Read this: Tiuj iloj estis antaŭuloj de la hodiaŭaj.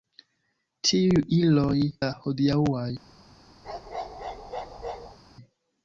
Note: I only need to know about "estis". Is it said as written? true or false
false